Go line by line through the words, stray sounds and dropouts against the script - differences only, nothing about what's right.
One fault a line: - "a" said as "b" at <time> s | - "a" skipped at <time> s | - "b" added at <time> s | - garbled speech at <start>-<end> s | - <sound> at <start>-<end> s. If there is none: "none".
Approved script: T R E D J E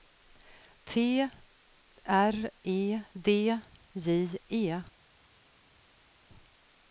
none